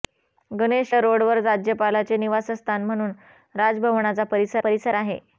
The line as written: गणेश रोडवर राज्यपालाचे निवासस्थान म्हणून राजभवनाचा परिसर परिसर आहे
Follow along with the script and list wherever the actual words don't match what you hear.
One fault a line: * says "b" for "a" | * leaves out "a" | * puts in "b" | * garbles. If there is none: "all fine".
all fine